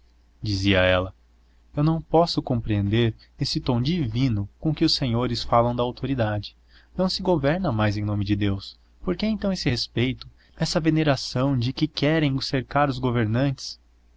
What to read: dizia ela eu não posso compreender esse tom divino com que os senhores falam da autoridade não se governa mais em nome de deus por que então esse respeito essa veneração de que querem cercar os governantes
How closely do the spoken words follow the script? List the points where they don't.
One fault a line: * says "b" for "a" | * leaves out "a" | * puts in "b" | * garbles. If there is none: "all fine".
all fine